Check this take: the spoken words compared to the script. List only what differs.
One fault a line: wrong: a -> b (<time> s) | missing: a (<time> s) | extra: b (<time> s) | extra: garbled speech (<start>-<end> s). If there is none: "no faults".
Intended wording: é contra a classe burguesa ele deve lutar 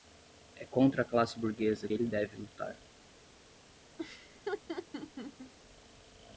no faults